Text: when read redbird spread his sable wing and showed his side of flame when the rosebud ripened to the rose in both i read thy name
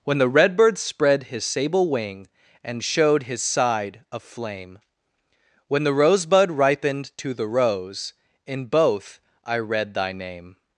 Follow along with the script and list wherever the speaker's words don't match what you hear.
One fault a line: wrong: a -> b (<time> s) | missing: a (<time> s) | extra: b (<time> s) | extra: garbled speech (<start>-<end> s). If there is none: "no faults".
wrong: read -> the (0.2 s)